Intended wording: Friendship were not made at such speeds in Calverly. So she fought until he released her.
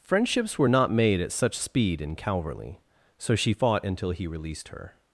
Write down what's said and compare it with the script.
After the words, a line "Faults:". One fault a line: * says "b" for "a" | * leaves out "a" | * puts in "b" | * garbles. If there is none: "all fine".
Friendships were not made at such speed in Calverly. So she fought until he released her.
Faults:
* says "Friendships" for "Friendship"
* says "speed" for "speeds"